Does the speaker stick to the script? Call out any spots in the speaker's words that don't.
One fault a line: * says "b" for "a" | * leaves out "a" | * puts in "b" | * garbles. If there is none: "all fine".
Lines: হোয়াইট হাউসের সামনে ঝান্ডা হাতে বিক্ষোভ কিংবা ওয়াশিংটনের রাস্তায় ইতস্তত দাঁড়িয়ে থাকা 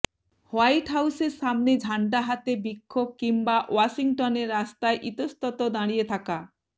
all fine